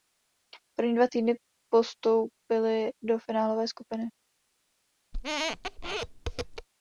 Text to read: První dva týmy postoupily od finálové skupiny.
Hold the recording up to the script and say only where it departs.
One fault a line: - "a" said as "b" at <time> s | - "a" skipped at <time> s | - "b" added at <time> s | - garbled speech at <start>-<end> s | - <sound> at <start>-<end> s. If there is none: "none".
- "od" said as "do" at 3.0 s
- squeak at 5.1-6.7 s